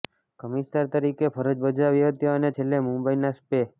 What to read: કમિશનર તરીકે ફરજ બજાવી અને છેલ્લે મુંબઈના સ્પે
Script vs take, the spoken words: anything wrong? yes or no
yes